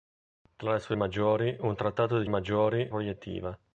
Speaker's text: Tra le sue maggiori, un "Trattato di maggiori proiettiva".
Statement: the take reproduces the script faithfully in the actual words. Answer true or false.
true